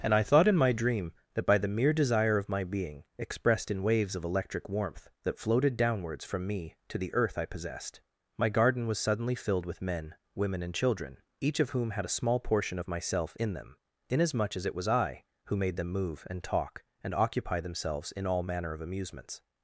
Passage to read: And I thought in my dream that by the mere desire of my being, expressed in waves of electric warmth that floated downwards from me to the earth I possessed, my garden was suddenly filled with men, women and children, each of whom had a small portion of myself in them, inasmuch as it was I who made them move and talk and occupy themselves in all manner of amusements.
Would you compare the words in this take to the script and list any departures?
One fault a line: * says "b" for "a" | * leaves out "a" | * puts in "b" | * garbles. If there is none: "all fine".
all fine